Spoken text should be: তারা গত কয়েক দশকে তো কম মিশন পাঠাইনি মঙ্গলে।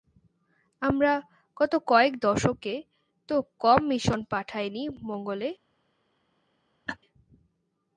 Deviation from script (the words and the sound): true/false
true